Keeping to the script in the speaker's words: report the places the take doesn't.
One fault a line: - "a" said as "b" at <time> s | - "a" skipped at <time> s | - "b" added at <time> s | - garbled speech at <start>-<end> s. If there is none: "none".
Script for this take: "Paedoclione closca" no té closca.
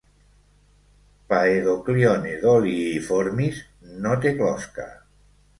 - "closca" said as "doliiformis" at 2.5 s